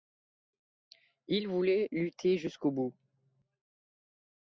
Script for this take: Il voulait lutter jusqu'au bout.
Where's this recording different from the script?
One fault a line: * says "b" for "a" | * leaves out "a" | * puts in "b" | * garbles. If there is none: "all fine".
all fine